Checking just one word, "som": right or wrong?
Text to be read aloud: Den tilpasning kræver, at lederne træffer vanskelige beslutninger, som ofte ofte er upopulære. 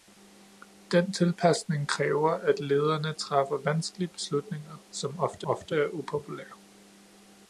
right